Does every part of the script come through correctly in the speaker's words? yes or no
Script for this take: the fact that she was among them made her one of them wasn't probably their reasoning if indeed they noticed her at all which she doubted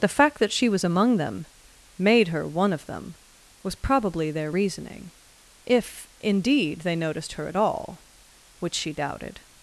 no